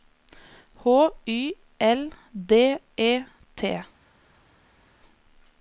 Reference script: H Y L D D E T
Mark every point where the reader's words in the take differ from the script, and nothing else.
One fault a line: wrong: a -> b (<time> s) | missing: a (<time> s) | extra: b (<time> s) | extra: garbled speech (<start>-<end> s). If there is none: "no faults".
missing: D (2.8 s)